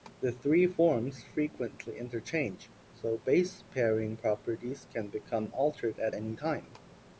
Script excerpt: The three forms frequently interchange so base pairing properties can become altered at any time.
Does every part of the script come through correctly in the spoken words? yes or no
yes